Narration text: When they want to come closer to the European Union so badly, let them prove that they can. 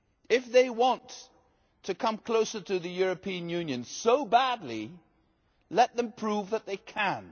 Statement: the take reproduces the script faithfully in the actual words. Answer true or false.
false